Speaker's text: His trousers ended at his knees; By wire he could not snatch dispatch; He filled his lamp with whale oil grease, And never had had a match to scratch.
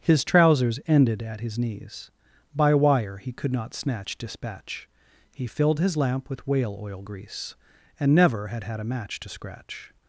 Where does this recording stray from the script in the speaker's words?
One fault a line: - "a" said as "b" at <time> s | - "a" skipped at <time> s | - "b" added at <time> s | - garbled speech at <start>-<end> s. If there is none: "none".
none